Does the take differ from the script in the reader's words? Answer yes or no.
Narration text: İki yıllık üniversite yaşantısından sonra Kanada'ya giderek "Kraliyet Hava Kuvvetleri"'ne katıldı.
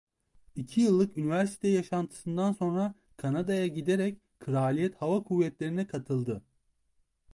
no